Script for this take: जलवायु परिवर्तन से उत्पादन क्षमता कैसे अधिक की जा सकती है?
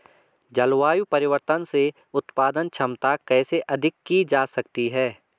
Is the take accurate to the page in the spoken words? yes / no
yes